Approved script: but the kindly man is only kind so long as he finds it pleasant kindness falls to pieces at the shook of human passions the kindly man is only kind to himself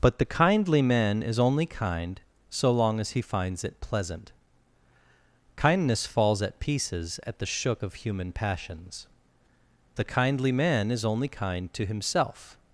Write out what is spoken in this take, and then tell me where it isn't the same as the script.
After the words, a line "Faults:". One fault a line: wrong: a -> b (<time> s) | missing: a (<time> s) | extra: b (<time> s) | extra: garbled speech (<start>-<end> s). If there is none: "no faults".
but the kindly man is only kind so long as he finds it pleasant kindness falls at pieces at the shook of human passions the kindly man is only kind to himself
Faults:
wrong: to -> at (6.4 s)